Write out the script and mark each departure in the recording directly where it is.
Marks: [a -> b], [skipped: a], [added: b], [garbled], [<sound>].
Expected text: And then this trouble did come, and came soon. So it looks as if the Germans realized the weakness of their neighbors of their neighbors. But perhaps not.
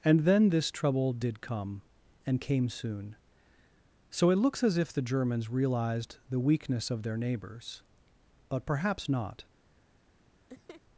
And then this trouble did come, and came soon. So it looks as if the Germans realized the weakness of their neighbors [skipped: of their neighbors.] But perhaps not. [laugh]